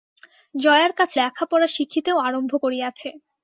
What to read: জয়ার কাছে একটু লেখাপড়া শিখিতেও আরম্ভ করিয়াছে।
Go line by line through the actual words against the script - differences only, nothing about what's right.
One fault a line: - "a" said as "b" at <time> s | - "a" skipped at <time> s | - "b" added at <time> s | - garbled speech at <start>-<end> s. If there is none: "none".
- "একটু" skipped at 1.2 s